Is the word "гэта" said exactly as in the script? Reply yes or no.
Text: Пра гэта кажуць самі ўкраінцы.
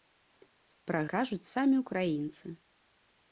no